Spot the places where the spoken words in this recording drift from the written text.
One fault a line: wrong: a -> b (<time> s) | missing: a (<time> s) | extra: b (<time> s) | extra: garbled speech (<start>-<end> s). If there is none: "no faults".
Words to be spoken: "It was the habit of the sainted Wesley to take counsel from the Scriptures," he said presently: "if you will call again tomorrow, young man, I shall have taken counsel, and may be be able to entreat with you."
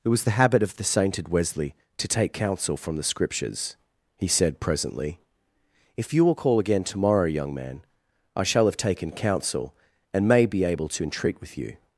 missing: be (10.6 s)